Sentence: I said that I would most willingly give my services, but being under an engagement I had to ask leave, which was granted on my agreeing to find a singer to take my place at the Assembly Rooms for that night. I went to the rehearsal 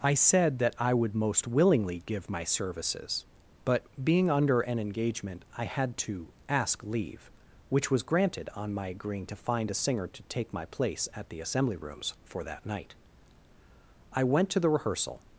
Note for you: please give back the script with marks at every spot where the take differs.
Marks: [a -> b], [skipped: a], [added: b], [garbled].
I said that I would most willingly give my services, but being under an engagement I had to ask leave, which was granted on my agreeing to find a singer to take my place at the Assembly Rooms for that night. I went to the rehearsal